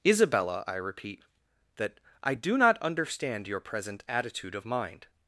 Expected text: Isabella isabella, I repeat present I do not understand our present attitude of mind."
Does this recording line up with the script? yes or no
no